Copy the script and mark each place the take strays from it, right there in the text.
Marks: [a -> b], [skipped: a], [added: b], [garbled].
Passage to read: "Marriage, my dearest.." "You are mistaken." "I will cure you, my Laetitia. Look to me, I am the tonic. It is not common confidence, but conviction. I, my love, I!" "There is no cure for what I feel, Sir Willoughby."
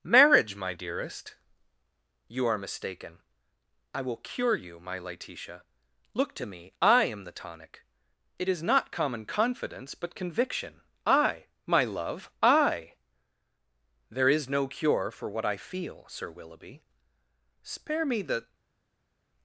"Marriage, my dearest.." "You are mistaken." "I will cure you, my Laetitia. Look to me, I am the tonic. It is not common confidence, but conviction. I, my love, I!" "There is no cure for what I feel, Sir Willoughby." [added: Spare me the]